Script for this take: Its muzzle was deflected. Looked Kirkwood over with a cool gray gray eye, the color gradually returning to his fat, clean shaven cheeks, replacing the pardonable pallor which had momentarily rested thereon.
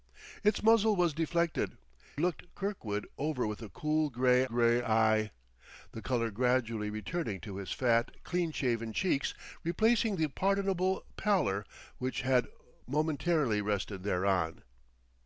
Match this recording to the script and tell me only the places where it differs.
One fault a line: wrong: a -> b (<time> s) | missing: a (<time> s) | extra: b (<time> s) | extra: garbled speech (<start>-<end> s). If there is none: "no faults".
no faults